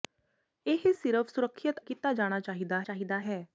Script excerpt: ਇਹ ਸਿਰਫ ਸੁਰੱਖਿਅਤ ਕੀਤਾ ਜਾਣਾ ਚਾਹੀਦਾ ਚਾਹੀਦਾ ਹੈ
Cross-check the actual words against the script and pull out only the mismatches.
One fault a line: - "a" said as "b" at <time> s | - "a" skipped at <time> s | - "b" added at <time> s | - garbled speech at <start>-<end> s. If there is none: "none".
none